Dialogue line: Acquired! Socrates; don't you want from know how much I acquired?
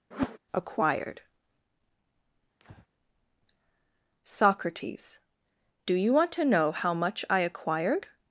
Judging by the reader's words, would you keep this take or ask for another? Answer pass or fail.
fail